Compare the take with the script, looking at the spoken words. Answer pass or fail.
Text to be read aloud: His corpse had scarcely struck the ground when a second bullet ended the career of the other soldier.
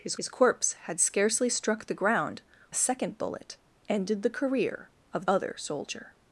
fail